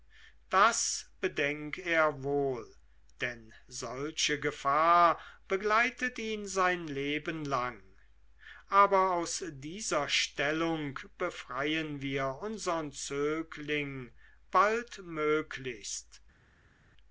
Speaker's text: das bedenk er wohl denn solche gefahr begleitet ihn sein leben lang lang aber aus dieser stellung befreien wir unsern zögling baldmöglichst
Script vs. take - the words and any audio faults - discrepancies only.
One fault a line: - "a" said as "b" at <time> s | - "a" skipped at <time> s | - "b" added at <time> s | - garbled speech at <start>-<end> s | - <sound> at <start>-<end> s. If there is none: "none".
- "lang" skipped at 7.8 s